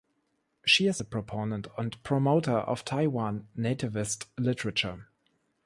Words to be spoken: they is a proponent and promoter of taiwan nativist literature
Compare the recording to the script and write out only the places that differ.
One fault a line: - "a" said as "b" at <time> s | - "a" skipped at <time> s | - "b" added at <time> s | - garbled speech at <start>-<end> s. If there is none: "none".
- "they" said as "she" at 0.7 s